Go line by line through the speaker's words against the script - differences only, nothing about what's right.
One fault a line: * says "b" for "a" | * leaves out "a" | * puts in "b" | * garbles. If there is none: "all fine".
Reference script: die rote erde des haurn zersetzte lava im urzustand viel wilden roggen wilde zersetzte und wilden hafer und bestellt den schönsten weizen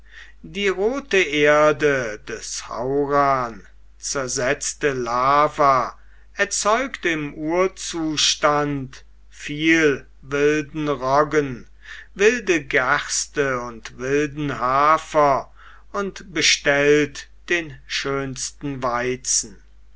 * puts in "erzeugt"
* says "gerste" for "zersetzte"